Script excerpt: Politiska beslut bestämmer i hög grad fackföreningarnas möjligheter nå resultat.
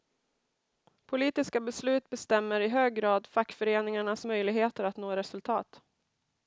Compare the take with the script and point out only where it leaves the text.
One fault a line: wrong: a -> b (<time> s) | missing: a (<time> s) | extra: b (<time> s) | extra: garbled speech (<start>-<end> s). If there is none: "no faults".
extra: att (4.8 s)